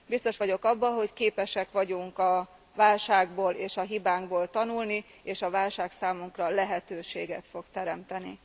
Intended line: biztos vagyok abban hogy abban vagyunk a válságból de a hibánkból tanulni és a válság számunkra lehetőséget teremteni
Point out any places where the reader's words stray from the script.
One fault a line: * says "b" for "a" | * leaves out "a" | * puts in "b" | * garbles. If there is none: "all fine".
* says "képesek" for "abban"
* says "és" for "de"
* puts in "fog"